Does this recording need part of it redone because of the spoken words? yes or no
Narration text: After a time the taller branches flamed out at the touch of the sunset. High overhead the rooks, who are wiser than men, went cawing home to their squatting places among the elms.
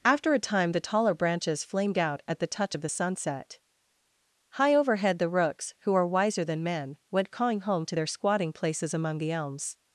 no